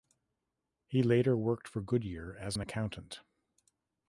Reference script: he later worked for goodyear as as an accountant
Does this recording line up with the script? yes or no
no